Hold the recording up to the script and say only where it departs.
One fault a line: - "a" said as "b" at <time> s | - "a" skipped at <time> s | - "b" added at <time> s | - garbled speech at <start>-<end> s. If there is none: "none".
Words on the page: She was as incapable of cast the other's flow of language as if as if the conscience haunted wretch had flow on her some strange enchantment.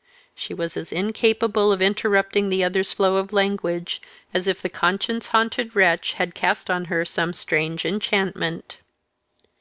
- "cast" said as "interrupting" at 1.8 s
- "as if" skipped at 4.6 s
- "flow" said as "cast" at 6.4 s